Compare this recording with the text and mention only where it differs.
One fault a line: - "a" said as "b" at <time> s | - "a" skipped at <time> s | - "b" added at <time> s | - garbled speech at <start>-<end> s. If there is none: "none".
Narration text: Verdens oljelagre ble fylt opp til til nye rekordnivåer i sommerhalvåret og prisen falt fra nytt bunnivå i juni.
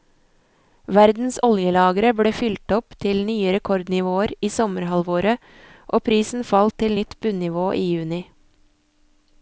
- "til" skipped at 3.2 s
- "fra" said as "til" at 6.8 s